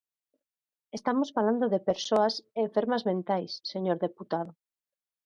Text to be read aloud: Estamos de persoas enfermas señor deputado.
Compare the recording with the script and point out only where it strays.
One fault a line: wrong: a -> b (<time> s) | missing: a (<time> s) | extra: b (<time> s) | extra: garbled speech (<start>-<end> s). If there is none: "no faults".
extra: falando (1.4 s)
extra: mentais (3.1 s)